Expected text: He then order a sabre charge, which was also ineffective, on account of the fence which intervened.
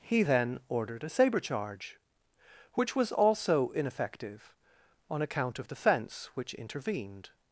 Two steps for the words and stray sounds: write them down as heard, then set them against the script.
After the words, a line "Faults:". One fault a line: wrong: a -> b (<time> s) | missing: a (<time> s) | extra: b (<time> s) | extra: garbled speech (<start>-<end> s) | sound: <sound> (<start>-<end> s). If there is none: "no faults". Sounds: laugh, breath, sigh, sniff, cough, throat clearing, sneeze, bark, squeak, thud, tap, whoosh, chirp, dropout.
He then ordered a sabre charge, which was also ineffective, on account of the fence which intervened.
Faults:
wrong: order -> ordered (0.7 s)